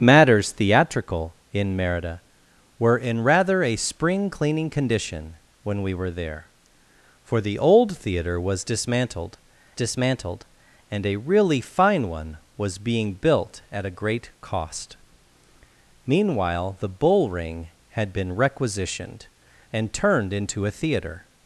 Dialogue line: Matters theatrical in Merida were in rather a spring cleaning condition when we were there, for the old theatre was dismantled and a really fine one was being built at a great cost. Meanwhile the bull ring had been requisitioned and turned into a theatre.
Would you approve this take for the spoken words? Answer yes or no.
no